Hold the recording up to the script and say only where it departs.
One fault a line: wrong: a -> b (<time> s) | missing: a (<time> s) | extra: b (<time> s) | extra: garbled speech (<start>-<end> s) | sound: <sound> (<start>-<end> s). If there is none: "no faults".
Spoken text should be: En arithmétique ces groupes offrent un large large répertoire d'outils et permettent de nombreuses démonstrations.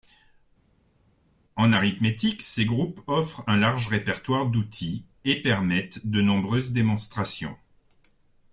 missing: large (3.9 s)